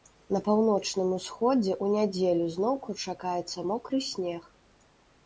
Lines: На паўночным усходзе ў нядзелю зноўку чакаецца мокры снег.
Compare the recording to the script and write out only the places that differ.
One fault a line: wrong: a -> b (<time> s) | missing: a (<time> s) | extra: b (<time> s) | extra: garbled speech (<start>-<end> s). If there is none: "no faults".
no faults